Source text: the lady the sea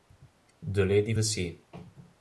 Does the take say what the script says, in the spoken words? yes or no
yes